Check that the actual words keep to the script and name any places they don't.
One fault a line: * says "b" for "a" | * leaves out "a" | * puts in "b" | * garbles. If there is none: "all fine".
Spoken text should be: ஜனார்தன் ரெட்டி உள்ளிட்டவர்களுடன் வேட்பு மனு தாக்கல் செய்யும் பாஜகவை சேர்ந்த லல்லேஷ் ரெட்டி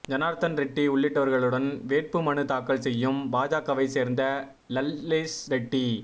all fine